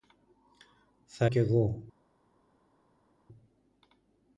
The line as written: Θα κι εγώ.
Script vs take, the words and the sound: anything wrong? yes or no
no